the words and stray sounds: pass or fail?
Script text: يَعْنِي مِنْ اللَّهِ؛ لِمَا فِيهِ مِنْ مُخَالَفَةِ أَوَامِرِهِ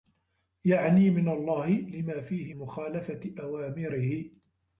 fail